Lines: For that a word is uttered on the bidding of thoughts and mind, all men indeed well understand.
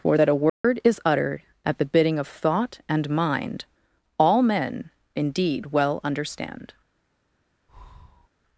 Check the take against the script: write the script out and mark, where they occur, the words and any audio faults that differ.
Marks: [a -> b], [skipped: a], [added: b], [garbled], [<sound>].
For that a word [dropout] is uttered [on -> at] the bidding of [thoughts -> thought] and mind, all men indeed well understand. [breath]